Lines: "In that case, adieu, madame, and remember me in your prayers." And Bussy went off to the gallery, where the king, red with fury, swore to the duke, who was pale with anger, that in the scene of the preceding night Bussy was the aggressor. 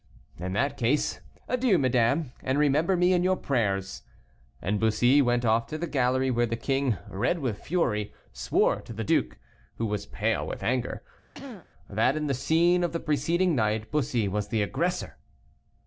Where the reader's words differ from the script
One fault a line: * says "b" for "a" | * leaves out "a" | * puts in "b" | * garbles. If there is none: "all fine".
all fine